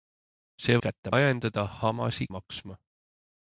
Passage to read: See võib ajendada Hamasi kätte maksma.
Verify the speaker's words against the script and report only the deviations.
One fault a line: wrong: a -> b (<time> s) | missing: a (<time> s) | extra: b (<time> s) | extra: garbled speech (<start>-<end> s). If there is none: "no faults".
wrong: võib -> kätte (0.9 s)
missing: kätte (2.3 s)